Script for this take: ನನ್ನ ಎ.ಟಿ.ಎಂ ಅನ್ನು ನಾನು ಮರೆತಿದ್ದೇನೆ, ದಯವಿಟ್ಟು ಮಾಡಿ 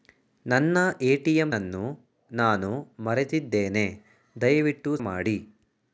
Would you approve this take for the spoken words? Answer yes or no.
yes